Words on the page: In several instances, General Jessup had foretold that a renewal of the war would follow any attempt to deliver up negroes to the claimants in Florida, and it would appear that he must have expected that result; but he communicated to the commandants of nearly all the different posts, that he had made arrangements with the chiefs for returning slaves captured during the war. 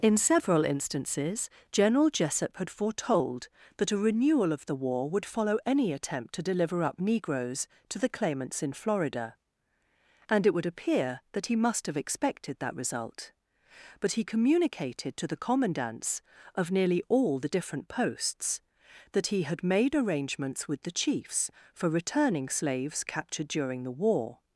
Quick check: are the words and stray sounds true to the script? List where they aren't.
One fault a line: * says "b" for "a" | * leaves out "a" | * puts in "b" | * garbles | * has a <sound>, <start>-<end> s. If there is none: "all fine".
all fine